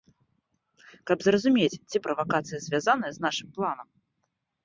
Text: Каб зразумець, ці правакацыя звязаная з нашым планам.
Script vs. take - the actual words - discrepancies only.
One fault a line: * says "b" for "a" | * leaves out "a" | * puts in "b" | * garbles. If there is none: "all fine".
all fine